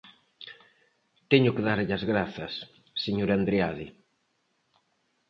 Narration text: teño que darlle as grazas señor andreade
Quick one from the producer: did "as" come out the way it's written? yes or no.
yes